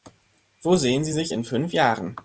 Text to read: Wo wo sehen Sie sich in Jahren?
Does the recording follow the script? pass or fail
fail